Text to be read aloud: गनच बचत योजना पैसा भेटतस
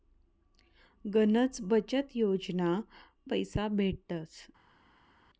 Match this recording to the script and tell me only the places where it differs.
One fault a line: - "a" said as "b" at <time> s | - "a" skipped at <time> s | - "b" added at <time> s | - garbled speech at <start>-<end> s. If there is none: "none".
none